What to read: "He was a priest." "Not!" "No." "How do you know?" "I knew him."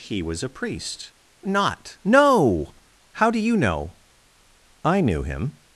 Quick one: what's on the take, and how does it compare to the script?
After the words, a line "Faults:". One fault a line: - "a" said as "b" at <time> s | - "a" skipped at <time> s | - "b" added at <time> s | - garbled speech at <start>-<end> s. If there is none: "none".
"He was a priest." "Not!" "No." "How do you know?" "I knew him."
Faults:
none